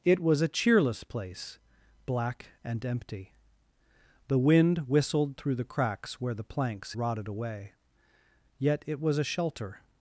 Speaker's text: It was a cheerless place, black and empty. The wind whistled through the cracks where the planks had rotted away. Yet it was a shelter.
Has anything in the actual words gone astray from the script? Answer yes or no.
yes